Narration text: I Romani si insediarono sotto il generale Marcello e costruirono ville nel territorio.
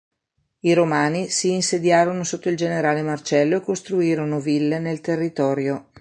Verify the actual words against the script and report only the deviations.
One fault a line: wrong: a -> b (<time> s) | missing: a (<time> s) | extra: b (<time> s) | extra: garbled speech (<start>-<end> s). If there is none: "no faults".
no faults